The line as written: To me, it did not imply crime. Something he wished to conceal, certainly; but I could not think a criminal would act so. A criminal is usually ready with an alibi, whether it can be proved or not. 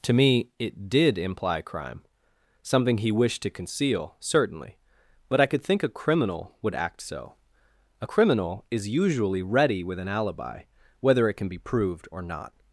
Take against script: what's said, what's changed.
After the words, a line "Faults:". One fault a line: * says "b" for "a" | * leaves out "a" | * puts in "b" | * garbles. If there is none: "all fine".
To me, it did imply crime. Something he wished to conceal, certainly; but I could think a criminal would act so. A criminal is usually ready with an alibi, whether it can be proved or not.
Faults:
* leaves out "not"
* leaves out "not"